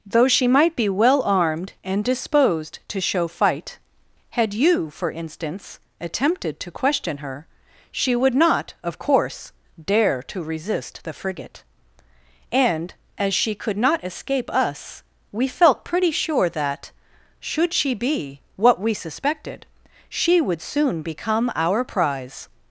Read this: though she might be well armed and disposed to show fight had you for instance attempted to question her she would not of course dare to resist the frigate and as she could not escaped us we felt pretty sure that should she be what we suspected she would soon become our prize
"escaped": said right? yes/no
no